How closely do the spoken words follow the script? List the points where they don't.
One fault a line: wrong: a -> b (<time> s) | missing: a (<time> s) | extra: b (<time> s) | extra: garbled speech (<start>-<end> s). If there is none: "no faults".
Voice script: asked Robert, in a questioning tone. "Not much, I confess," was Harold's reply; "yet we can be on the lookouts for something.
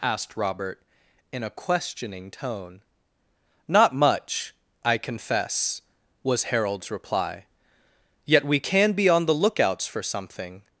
no faults